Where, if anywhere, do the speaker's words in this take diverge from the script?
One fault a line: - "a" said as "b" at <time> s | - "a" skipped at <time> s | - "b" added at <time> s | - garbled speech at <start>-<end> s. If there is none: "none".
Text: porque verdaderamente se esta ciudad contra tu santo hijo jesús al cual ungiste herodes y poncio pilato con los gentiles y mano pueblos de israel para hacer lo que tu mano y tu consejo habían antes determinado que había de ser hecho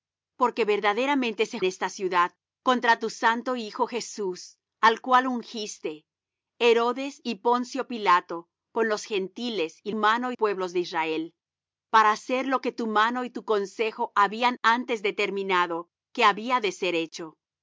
none